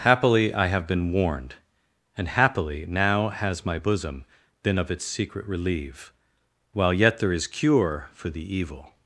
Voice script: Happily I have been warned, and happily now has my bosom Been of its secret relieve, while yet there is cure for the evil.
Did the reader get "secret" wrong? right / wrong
right